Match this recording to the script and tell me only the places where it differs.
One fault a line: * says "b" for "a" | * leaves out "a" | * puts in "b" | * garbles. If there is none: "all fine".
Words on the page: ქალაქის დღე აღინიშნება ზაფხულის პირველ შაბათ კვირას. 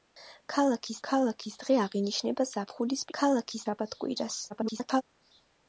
* puts in "ქალაქის"
* says "ქალაქის" for "პირველ"
* garbles